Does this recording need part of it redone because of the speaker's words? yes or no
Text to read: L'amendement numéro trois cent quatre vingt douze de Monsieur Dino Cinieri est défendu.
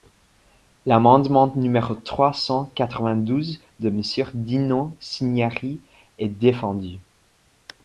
no